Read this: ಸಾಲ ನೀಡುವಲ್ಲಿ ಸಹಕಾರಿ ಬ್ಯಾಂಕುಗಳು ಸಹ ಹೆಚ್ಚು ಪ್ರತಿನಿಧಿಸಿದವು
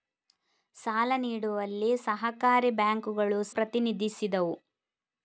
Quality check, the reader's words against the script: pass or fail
fail